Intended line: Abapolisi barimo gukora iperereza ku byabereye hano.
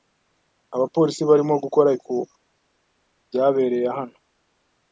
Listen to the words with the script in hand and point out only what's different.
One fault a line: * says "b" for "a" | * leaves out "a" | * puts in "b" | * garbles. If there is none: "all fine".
* leaves out "iperereza"